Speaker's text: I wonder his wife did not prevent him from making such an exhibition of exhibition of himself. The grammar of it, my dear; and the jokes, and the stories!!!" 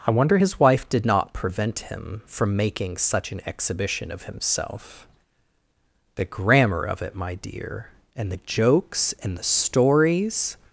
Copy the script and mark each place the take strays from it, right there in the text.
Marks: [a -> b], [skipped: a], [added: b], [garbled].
I wonder his wife did not prevent him from making such an exhibition of [skipped: exhibition of] himself. The grammar of it, my dear; and the jokes, and the stories!!!"